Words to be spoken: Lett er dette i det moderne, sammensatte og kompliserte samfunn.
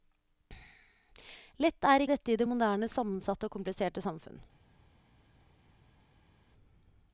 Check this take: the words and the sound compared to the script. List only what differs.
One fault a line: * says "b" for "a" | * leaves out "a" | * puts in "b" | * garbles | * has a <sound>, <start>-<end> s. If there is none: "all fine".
all fine